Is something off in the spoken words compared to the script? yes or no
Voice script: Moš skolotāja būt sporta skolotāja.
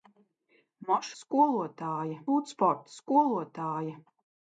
no